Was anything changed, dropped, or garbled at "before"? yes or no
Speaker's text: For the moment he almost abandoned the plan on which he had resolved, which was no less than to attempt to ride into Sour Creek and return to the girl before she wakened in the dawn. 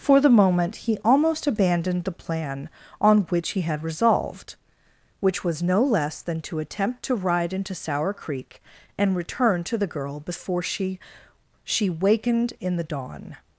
no